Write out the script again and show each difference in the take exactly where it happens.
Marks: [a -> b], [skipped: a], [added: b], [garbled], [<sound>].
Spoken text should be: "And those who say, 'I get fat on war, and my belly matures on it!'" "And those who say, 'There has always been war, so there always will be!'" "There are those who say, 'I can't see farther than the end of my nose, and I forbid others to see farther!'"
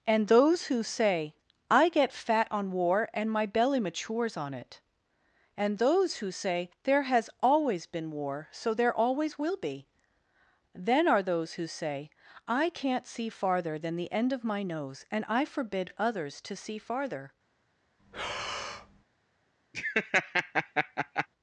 "And those who say, 'I get fat on war, and my belly matures on it!'" "And those who say, 'There has always been war, so there always will be!'" ["There -> Then] are those who say, 'I can't see farther than the end of my nose, and I forbid others to see farther!'" [breath] [laugh]